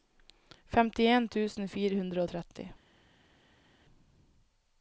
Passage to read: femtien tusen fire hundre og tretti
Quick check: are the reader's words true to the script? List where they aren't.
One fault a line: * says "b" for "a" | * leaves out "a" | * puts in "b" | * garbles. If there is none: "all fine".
all fine